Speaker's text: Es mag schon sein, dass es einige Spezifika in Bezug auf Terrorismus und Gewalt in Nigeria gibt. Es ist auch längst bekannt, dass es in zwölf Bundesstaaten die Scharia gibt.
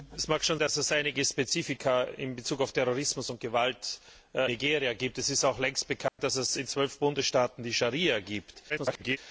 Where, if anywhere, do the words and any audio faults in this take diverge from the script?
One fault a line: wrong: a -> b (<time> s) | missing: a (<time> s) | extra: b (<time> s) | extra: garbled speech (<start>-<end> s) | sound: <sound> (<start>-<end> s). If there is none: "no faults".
missing: sein (0.6 s)
missing: in (4.0 s)
sound: dropout (6.1-6.2 s)
extra: garbled speech (8.7-9.2 s)